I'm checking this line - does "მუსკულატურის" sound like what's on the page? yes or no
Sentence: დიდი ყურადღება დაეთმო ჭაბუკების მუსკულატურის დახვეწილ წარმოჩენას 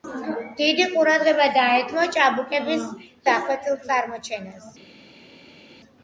no